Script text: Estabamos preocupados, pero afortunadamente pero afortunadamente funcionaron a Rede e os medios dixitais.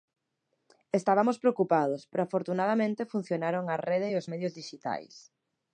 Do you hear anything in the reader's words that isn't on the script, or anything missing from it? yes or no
yes